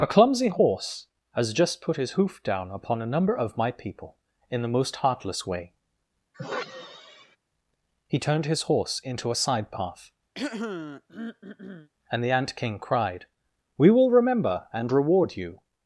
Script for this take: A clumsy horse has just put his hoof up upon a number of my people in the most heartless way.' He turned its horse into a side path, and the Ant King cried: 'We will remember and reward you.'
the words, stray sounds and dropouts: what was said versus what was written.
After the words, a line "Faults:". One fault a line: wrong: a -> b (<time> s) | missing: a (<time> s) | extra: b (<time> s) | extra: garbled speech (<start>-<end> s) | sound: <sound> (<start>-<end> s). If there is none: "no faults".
A clumsy horse has just put his hoof down upon a number of my people in the most heartless way.' He turned his horse into a side path, and the Ant King cried: 'We will remember and reward you.'
Faults:
wrong: up -> down (2.4 s)
sound: sigh (6.3-7.4 s)
wrong: its -> his (8.4 s)
sound: throat clearing (10.4-11.9 s)